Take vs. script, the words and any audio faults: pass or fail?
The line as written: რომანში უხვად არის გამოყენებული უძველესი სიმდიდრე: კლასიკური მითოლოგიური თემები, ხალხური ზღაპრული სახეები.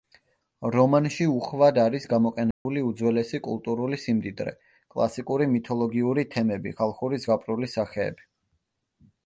fail